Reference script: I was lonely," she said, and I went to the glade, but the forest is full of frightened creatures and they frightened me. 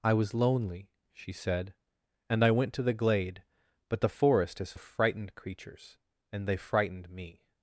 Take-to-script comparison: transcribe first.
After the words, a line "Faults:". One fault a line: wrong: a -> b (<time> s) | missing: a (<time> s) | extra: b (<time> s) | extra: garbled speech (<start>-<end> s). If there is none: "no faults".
I was lonely," she said, and I went to the glade, but the forest is of frightened creatures and they frightened me.
Faults:
missing: full (4.7 s)